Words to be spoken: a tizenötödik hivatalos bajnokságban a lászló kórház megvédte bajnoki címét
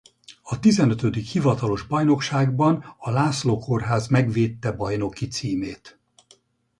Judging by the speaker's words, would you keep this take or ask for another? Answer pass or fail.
pass